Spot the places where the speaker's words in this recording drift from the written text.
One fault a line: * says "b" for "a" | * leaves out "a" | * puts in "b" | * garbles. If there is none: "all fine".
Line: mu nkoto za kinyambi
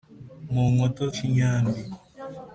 * leaves out "za"